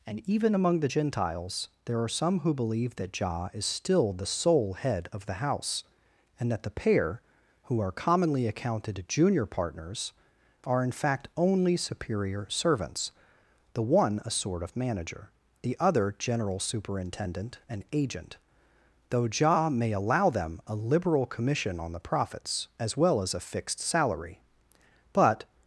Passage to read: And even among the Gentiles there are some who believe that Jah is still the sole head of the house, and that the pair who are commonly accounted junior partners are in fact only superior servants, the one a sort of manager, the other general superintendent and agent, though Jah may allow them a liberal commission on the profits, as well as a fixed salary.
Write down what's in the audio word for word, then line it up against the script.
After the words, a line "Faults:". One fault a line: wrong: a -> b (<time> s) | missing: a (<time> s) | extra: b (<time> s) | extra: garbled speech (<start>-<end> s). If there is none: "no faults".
And even among the Gentiles there are some who believe that Jah is still the sole head of the house, and that the pair who are commonly accounted junior partners are in fact only superior servants, the one a sort of manager, the other general superintendent and agent, though Jah may allow them a liberal commission on the profits, as well as a fixed salary. But
Faults:
extra: But (25.1 s)